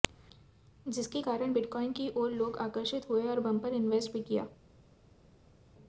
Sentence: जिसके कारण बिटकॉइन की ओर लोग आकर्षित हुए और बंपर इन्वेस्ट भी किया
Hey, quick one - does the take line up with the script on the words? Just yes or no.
yes